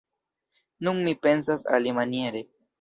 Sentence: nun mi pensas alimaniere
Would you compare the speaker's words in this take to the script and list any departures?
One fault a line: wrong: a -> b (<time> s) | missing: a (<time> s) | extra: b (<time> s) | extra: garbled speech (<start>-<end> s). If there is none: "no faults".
no faults